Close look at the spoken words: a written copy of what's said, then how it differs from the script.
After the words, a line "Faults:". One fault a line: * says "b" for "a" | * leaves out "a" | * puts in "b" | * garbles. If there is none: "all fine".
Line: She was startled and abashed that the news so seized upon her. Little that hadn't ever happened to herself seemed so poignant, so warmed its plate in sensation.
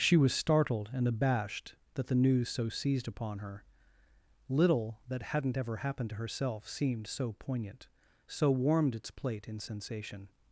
She was startled and abashed that the news so seized upon her. Little that hadn't ever happened to herself seemed so poignant, so warmed its plate in sensation.
Faults:
all fine